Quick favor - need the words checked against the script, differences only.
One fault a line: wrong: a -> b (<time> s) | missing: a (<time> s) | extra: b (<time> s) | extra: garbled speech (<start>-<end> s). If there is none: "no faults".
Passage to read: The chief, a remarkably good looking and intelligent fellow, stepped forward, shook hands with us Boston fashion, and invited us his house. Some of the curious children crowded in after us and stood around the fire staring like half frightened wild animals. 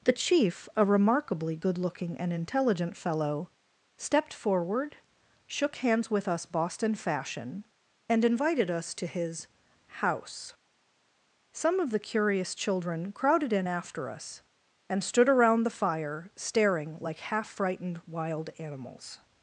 extra: to (8.9 s)